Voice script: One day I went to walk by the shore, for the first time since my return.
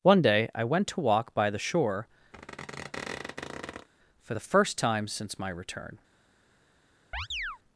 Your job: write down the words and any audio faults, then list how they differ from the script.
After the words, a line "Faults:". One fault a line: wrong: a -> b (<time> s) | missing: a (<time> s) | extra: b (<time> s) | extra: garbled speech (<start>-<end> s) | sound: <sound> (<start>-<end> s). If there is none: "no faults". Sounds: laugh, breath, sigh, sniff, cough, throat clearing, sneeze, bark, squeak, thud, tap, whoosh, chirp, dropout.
One day I went to walk by the shore, for the first time since my return.
Faults:
sound: squeak (2.3-3.9 s)
sound: chirp (7.1-7.6 s)